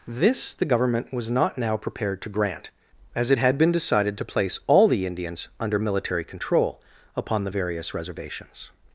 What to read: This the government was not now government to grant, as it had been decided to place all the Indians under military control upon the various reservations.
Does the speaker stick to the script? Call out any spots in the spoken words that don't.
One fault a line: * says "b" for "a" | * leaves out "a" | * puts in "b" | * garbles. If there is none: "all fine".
* says "prepared" for "government"